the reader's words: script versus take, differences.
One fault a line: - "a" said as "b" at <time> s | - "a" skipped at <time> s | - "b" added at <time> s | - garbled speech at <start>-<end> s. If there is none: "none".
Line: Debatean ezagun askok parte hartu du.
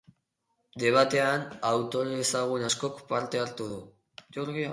- "autore" added at 1.7 s